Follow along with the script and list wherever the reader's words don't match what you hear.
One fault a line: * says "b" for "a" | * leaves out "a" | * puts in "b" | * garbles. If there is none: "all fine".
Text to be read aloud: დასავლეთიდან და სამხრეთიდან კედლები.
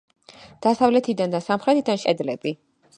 all fine